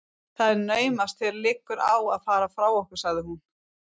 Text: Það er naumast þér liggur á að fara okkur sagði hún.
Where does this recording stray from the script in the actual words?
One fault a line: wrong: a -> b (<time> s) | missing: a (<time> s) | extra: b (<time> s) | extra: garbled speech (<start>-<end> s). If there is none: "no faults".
extra: frá (2.6 s)